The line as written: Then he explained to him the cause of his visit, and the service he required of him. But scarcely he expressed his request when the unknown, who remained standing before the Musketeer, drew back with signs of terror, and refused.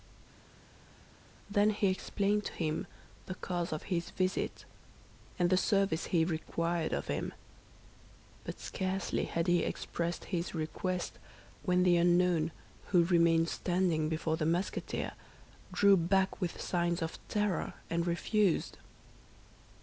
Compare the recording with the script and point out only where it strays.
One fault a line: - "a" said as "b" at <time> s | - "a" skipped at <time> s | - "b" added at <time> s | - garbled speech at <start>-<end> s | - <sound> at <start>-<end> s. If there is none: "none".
- "had" added at 9.3 s